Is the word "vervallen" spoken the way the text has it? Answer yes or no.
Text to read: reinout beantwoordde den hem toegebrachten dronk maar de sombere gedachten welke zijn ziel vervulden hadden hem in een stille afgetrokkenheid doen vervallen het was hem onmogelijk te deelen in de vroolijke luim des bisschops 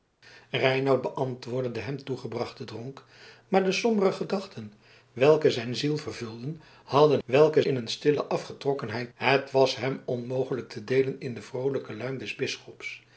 no